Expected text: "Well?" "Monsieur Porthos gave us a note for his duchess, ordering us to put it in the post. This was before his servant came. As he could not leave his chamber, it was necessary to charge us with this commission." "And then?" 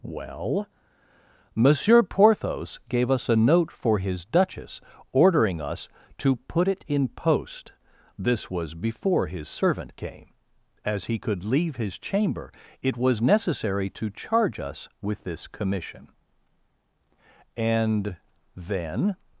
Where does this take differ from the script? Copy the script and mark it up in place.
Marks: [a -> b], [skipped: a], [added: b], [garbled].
"Well?" "Monsieur Porthos gave us a note for his duchess, ordering us to put it in [skipped: the] post. This was before his servant came. As he could [skipped: not] leave his chamber, it was necessary to charge us with this commission." "And then?"